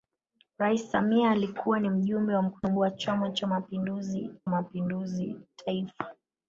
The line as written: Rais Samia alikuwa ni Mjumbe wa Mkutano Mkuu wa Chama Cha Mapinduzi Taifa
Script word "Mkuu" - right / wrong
wrong